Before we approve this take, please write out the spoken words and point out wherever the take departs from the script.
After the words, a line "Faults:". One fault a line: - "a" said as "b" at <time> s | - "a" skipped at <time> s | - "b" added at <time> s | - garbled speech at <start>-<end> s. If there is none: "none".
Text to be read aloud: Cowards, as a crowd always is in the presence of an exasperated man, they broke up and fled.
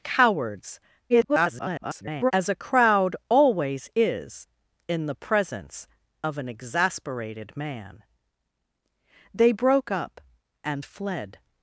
Cowards, [garbled] as a crowd always is in the presence of an exasperated man, they broke up and fled.
Faults:
- garbled speech at 1.1-2.3 s